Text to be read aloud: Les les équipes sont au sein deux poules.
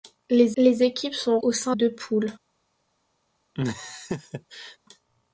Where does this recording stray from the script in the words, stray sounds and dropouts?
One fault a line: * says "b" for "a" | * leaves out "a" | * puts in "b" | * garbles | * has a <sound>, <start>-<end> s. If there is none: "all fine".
* has a laugh, 3.5-4.8 s